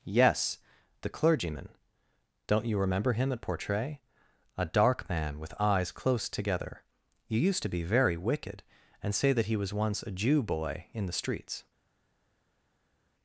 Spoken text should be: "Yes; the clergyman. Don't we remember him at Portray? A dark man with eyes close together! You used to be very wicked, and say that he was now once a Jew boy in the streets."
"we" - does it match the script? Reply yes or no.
no